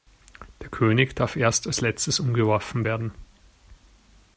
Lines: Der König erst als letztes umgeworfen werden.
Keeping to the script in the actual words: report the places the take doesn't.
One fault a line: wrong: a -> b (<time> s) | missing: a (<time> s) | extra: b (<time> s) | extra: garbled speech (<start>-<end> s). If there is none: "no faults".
extra: darf (1.1 s)